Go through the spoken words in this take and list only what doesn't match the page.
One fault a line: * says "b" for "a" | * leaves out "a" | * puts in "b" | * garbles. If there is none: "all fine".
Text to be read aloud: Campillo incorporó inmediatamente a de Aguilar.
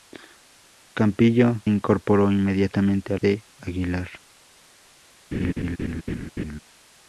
all fine